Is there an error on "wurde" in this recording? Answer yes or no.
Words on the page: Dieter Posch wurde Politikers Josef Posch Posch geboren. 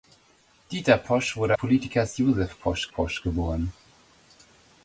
no